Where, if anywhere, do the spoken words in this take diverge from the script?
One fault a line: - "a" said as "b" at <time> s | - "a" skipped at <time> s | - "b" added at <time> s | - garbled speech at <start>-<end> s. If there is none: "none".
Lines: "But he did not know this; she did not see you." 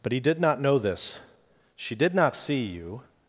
none